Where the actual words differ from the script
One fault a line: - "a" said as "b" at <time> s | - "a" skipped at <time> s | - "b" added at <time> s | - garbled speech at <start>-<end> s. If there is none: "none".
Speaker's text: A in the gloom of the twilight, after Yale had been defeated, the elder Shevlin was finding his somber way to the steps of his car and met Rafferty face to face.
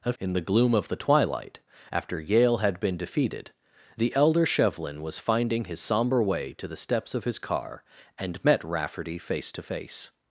none